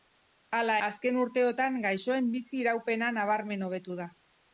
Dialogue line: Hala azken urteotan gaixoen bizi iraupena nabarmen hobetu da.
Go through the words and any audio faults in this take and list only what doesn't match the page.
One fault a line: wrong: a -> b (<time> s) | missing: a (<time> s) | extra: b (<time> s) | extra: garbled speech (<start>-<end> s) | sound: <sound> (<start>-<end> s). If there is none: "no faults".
no faults